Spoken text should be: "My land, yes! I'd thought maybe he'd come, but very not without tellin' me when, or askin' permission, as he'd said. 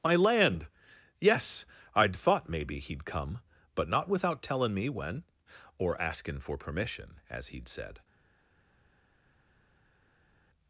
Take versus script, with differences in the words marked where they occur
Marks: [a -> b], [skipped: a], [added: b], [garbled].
"My land, yes! I'd thought maybe he'd come, but [skipped: very] not without tellin' me when, or askin' [added: for] permission, as he'd said.